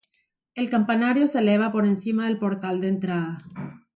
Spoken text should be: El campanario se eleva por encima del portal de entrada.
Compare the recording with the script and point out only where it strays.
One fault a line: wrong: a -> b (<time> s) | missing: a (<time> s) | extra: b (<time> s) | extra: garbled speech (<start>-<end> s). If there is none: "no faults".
no faults